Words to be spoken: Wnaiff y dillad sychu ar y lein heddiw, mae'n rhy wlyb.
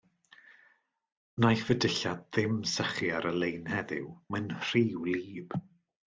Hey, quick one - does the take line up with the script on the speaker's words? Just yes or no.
no